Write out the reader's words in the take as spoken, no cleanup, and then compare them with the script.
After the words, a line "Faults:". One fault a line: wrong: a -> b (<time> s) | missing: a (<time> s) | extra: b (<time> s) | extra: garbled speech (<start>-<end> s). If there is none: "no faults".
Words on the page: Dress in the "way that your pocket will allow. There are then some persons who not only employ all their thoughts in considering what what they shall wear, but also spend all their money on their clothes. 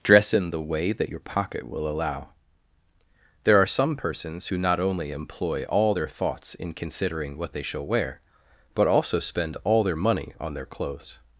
Dress in the "way that your pocket will allow. There are some persons who not only employ all their thoughts in considering what they shall wear, but also spend all their money on their clothes.
Faults:
missing: then (3.7 s)
missing: what (7.5 s)